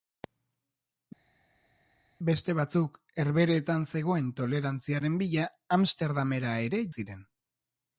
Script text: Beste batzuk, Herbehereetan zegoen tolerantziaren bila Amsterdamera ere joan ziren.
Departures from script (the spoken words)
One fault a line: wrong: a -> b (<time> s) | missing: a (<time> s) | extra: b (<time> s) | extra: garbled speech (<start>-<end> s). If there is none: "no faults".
missing: joan (6.9 s)